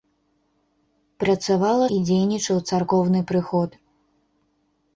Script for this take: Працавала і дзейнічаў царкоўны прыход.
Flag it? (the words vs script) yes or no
no